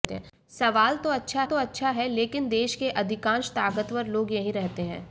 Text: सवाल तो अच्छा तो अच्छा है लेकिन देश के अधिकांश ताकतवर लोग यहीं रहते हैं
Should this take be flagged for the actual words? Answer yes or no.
no